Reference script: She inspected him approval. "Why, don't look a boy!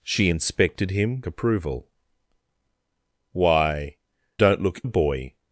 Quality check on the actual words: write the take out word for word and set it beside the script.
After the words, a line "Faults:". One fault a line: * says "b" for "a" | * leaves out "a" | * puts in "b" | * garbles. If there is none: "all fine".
She inspected him approval. "Why, don't look a boy!
Faults:
all fine